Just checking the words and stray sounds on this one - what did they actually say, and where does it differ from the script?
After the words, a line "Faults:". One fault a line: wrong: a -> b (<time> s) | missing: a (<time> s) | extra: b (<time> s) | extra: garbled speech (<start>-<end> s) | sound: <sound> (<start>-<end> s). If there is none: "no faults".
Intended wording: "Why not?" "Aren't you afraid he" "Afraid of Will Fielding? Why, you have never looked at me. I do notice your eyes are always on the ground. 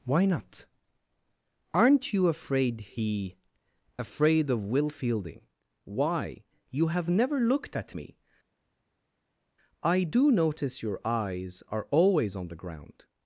"Why not?" "Aren't you afraid he" "Afraid of Will Fielding? Why, you have never looked at me. I do notice your eyes are always on the ground.
Faults:
no faults